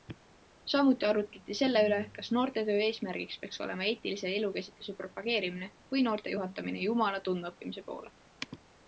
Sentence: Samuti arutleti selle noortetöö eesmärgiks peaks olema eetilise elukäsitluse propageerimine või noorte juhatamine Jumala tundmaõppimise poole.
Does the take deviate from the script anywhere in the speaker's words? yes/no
yes